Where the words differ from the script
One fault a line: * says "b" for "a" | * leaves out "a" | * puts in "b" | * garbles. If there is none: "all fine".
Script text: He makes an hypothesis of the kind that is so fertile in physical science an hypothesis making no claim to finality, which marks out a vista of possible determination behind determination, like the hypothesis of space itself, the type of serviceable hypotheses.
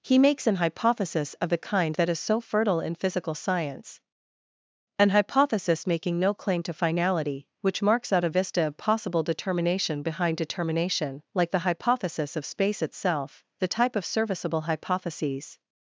all fine